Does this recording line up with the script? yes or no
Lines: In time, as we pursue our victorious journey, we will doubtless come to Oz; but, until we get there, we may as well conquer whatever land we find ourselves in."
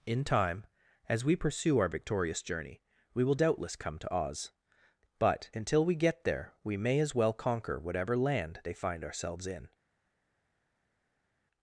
no